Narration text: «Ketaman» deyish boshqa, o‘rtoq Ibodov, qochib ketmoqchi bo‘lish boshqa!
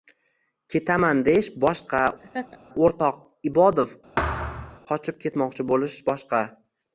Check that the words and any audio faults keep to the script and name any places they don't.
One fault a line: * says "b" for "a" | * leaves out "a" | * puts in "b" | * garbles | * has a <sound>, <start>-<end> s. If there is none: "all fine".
* has a laugh, 2.2-2.6 s
* has a thud, 4.2-4.8 s